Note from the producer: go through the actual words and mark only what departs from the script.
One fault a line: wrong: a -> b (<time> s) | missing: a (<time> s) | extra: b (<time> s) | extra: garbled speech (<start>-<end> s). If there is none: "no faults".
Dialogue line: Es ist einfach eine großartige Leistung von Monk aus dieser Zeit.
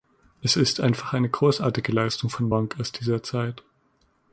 no faults